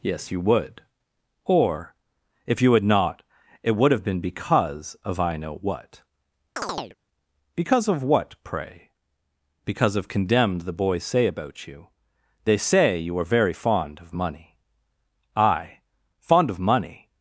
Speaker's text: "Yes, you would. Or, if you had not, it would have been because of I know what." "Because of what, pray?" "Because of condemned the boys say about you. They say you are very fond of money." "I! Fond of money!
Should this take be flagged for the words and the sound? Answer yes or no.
yes